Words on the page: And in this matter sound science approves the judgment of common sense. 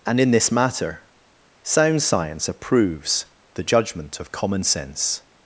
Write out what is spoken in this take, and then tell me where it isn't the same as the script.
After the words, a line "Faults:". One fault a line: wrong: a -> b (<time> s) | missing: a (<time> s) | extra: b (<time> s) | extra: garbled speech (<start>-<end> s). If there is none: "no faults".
And in this matter sound science approves the judgment of common sense.
Faults:
no faults